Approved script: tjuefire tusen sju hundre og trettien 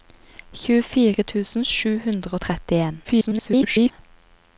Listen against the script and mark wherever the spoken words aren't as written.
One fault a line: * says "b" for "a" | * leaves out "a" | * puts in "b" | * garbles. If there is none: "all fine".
* garbles